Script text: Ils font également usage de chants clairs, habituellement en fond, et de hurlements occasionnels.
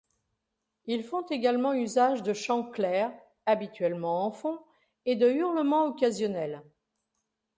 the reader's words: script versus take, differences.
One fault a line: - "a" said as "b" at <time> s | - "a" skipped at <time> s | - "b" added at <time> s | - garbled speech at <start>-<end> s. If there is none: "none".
none